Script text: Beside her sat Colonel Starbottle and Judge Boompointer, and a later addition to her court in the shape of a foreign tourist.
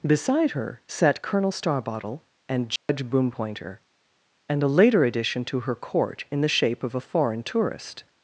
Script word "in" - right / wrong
right